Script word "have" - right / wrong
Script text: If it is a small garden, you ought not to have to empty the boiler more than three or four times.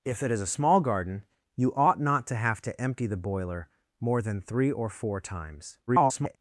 right